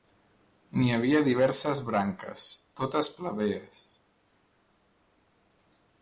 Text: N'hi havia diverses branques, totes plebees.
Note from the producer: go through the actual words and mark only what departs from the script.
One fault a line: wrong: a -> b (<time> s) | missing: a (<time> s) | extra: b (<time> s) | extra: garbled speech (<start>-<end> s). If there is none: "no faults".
no faults